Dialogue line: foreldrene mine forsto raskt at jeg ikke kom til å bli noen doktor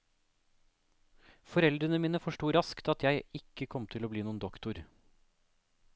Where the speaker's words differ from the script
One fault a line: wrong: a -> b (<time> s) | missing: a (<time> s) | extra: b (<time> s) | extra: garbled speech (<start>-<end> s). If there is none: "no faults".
no faults